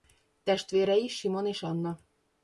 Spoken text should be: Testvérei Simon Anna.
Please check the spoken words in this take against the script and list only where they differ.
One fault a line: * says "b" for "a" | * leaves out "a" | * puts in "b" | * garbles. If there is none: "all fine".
* puts in "és"